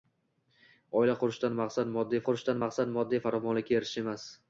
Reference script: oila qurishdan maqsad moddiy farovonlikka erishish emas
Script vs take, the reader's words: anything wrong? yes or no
yes